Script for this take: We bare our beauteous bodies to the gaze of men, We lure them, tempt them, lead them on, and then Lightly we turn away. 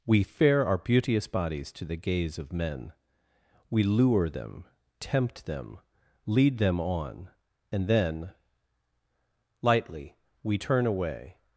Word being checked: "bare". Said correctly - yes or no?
no